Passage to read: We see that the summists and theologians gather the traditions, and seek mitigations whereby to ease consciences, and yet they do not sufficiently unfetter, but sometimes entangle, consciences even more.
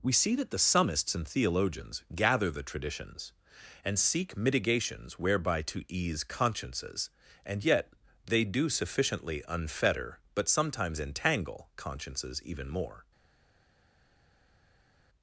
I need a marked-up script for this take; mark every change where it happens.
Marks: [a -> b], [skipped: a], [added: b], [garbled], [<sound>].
We see that the summists and theologians gather the traditions, and seek mitigations whereby to ease consciences, and yet they do [skipped: not] sufficiently unfetter, but sometimes entangle, consciences even more.